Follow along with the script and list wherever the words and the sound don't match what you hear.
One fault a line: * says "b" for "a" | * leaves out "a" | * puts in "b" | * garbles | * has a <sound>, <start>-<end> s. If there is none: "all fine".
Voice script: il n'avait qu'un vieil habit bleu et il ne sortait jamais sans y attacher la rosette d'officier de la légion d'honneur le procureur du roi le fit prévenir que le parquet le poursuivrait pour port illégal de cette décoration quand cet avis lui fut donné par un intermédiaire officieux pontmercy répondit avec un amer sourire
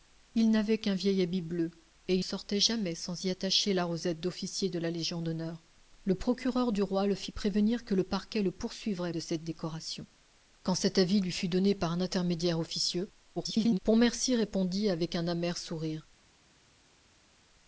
* leaves out "ne"
* leaves out "pour port illégal"
* garbles